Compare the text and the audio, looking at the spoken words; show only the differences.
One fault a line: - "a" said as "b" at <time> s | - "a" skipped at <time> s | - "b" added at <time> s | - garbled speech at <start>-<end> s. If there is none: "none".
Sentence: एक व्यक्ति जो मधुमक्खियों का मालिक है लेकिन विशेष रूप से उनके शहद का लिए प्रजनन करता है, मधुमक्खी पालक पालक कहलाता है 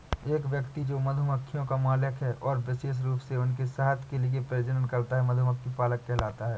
- "लेकिन" said as "और" at 2.3 s
- "का" said as "के" at 4.0 s
- "पालक" skipped at 6.0 s